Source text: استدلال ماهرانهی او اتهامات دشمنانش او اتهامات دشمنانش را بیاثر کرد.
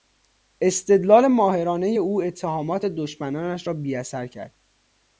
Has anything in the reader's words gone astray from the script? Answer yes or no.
yes